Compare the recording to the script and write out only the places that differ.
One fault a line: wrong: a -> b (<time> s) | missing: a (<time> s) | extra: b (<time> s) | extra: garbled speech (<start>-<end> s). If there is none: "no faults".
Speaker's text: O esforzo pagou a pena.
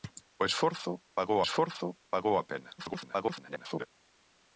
extra: esforzo pagou (1.4 s)
extra: garbled speech (2.8-3.9 s)